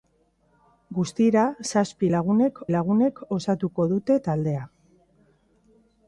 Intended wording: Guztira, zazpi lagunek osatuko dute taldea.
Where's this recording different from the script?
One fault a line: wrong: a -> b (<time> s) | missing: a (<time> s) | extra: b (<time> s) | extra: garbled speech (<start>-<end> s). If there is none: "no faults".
extra: lagunek (2.7 s)